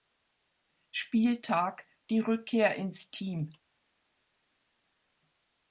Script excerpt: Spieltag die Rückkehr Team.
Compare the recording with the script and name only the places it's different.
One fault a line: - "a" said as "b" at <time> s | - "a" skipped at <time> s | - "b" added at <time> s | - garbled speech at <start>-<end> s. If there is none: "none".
- "ins" added at 2.8 s